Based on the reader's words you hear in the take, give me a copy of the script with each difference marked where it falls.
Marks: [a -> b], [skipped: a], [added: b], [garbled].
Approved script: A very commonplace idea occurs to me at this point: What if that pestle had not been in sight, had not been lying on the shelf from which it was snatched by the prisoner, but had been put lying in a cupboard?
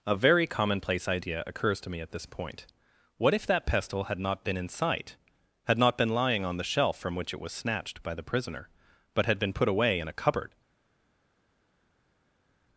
A very commonplace idea occurs to me at this point: What if that pestle had not been in sight, had not been lying on the shelf from which it was snatched by the prisoner, but had been put [lying -> away] in a cupboard?